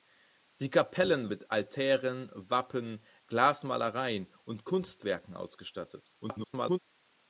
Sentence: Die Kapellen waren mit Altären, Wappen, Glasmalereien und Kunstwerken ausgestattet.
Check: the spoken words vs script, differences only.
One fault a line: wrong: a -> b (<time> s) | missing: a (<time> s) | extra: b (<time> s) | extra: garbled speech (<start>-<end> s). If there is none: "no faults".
missing: waren (1.3 s)
extra: garbled speech (6.2-6.8 s)